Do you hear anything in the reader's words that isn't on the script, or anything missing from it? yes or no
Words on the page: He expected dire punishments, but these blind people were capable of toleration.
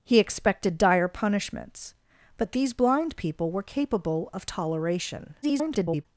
yes